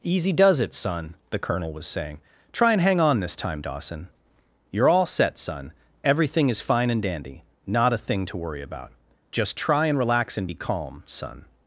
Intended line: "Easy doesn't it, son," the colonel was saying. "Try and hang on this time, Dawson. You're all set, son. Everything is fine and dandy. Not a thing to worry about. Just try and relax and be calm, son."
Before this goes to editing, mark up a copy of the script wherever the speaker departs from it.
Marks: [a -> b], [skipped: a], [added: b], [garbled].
"Easy [doesn't -> does] it, son," the colonel was saying. "Try and hang on this time, Dawson. You're all set, son. Everything is fine and dandy. Not a thing to worry about. Just try and relax and be calm, son."